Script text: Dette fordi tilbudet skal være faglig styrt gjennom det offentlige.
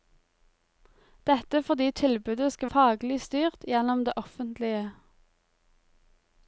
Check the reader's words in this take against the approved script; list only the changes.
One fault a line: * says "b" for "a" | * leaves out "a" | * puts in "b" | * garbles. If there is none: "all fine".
* leaves out "være"